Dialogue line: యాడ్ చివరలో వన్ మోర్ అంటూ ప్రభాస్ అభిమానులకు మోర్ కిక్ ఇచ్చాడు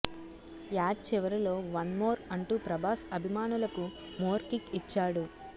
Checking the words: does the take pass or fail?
pass